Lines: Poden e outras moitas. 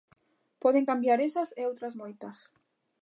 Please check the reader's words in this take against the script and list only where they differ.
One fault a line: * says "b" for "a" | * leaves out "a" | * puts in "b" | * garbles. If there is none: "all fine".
* puts in "cambiar esas"